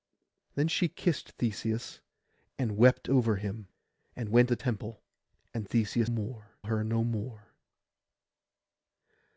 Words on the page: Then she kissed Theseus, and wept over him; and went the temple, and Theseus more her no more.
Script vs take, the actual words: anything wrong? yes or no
no